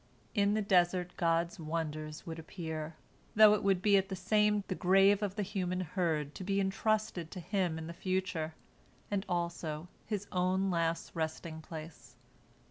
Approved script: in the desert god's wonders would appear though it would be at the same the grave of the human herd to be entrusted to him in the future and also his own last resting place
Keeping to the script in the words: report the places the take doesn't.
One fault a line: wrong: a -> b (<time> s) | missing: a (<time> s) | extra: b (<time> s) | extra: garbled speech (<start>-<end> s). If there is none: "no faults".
no faults